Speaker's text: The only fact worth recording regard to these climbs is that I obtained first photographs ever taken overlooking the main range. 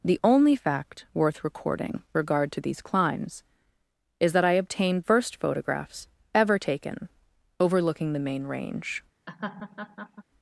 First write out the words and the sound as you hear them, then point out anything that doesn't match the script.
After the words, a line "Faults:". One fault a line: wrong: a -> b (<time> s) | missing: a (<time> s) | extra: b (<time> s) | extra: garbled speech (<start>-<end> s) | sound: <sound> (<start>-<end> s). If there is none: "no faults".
The only fact worth recording regard to these climbs is that I obtained first photographs ever taken overlooking the main range.
Faults:
sound: laugh (9.3-10.2 s)